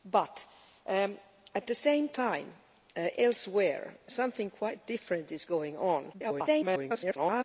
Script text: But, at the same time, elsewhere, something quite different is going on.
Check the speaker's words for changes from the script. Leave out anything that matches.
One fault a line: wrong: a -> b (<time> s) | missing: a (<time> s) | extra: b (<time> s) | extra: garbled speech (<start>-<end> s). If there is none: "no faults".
extra: garbled speech (6.1-7.4 s)